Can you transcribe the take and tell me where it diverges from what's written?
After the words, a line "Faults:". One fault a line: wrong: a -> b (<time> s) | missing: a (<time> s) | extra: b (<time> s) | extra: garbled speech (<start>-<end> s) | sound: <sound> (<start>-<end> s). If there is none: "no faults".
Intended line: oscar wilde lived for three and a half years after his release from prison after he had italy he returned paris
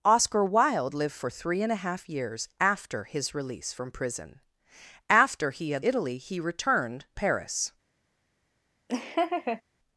oscar wilde lived for three and a half years after his release from prison after he had italy he returned paris
Faults:
sound: laugh (8.9-9.6 s)